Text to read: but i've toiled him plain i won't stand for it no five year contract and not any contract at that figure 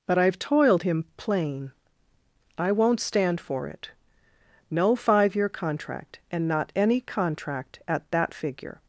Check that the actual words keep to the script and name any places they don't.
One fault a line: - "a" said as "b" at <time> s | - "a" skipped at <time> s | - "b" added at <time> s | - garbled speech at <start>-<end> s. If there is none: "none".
none